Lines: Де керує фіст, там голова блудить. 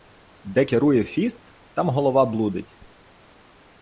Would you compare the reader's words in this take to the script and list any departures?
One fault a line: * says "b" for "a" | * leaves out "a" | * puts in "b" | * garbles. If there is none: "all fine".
all fine